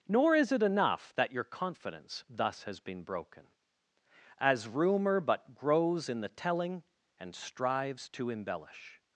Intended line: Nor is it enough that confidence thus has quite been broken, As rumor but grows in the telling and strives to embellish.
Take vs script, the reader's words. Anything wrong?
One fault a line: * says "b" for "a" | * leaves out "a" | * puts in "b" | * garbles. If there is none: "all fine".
* puts in "your"
* leaves out "quite"